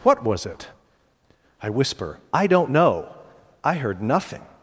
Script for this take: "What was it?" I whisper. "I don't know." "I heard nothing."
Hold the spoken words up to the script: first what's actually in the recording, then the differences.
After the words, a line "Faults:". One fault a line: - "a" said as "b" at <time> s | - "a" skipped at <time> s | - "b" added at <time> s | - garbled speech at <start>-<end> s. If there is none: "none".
"What was it?" I whisper. "I don't know." "I heard nothing."
Faults:
none